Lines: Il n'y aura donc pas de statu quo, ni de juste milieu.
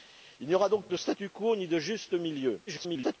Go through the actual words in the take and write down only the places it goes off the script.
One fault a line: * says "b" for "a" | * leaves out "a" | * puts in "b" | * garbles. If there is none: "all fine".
* leaves out "pas"
* garbles